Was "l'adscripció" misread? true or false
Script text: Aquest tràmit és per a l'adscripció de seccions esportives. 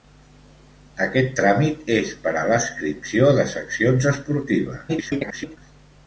false